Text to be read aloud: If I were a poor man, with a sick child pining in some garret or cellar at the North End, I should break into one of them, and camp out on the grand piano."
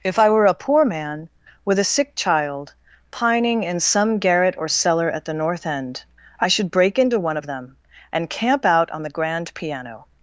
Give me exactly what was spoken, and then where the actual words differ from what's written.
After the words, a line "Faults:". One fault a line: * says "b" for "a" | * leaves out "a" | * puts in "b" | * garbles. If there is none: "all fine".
If I were a poor man, with a sick child pining in some garret or cellar at the North End, I should break into one of them, and camp out on the grand piano."
Faults:
all fine